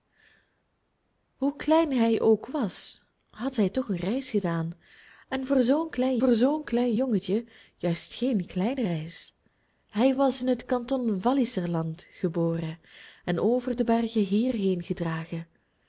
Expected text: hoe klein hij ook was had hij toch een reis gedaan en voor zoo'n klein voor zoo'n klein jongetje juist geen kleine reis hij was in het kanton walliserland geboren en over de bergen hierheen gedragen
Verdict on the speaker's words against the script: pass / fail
pass